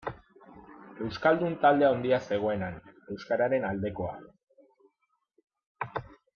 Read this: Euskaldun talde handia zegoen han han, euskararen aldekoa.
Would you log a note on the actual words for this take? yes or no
yes